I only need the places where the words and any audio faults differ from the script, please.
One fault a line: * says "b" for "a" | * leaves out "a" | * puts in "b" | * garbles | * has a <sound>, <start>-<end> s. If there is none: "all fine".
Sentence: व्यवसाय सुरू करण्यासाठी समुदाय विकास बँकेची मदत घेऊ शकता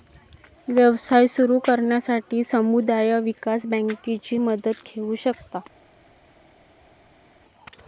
all fine